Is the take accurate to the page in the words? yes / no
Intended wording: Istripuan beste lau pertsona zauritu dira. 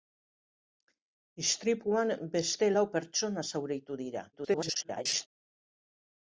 no